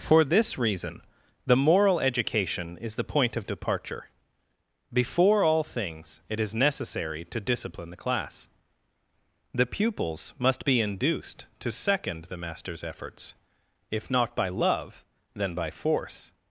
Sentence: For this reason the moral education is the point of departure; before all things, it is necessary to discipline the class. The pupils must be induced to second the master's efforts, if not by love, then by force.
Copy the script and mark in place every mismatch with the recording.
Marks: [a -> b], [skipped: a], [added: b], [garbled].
For this reason the moral education is the point of departure; before all things, it is necessary to discipline the class. The pupils must be induced to second the master's efforts, if not by love, then by force.